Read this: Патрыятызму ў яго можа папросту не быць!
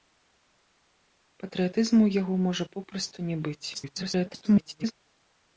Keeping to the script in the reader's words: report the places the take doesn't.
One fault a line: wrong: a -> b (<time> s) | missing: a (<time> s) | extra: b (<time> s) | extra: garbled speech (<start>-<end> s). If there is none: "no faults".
extra: garbled speech (3.7-4.9 s)